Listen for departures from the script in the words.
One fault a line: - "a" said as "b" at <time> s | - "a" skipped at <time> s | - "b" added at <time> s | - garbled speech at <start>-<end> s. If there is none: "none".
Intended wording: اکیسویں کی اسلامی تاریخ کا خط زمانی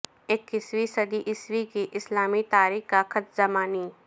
- "صدی عیسوی" added at 0.8 s